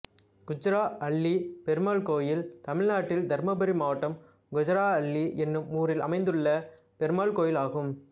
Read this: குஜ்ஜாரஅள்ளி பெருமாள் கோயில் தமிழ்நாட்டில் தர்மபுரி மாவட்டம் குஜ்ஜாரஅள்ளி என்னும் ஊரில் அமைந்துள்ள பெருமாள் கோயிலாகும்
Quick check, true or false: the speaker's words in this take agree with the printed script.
true